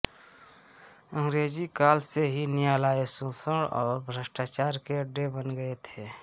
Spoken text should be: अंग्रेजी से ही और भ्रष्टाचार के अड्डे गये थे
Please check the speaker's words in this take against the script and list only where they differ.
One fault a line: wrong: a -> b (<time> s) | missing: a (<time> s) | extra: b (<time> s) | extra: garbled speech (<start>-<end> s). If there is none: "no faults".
extra: काल (1.8 s)
extra: न्यायालय शोषण (2.5 s)
extra: बन (5.4 s)